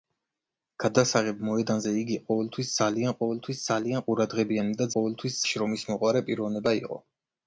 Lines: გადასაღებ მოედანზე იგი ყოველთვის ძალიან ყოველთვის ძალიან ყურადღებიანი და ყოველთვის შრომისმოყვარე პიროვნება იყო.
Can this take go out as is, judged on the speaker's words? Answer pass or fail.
pass